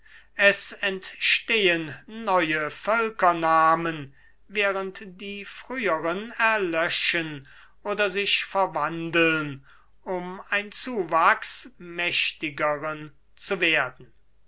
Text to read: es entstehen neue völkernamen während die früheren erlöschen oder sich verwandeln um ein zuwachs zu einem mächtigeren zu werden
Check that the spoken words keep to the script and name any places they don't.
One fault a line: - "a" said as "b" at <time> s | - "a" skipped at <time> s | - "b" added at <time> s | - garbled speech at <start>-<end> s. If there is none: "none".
- "zu einem" skipped at 11.7 s